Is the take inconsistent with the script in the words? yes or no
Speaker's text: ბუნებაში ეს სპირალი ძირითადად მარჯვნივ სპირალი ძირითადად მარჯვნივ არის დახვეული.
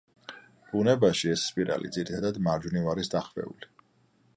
yes